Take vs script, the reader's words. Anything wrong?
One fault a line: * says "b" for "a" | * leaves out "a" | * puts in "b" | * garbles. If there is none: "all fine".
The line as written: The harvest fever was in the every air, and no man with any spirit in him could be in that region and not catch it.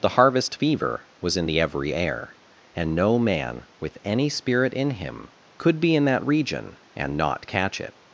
all fine